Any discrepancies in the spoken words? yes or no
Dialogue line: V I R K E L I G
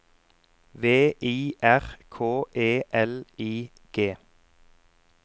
no